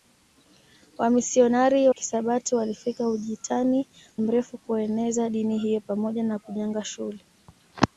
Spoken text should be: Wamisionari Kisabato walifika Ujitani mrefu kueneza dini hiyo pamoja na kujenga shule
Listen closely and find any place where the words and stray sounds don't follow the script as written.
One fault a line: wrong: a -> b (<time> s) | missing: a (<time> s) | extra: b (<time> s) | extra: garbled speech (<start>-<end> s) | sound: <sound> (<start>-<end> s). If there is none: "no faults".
no faults